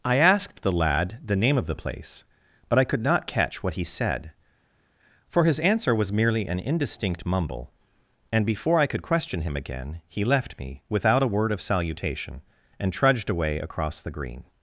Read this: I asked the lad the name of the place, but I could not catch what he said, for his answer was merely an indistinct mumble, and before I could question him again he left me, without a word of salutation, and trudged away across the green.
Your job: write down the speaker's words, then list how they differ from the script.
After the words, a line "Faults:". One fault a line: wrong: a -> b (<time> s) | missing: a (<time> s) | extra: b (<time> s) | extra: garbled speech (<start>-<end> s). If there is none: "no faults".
I asked the lad the name of the place, but I could not catch what he said, for his answer was merely an indistinct mumble, and before I could question him again he left me, without a word of salutation, and trudged away across the green.
Faults:
no faults